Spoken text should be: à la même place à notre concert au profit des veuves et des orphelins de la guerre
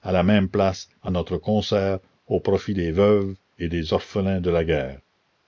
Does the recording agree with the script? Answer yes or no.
yes